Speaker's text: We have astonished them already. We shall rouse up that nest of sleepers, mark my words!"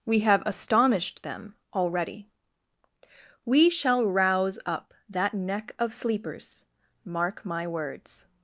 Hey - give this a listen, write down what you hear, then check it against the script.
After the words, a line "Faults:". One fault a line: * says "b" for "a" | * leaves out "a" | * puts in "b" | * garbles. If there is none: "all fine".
We have astonished them already. We shall rouse up that neck of sleepers, mark my words!"
Faults:
* says "neck" for "nest"